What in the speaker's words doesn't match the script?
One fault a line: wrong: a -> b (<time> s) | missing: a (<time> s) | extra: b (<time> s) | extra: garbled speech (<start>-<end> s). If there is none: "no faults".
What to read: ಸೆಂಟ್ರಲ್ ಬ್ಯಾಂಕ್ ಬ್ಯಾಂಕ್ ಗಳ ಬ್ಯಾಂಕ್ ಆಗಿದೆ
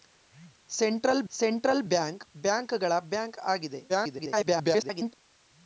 extra: ಸೆಂಟ್ರಲ್ (1.3 s)
extra: garbled speech (3.9-5.1 s)